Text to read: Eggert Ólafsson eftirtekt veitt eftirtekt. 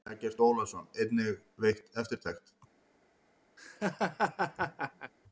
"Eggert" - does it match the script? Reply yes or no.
yes